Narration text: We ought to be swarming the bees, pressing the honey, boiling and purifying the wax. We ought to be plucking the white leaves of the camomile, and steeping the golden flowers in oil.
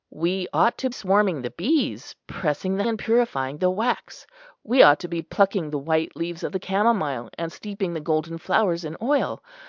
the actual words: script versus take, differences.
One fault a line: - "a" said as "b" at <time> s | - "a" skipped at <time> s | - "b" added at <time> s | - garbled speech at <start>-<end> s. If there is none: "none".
- "be" skipped at 0.9 s
- "honey boiling" skipped at 2.8 s